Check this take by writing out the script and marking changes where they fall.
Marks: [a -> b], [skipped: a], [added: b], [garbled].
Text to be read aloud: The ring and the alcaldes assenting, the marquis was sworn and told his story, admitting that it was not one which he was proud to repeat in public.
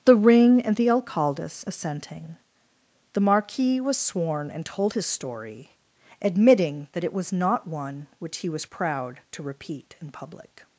The ring and the alcaldes assenting, the marquis was sworn and told his story, admitting that it was not one which he was proud to repeat in public.